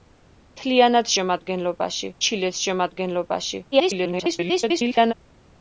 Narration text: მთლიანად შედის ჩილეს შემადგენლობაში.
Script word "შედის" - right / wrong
wrong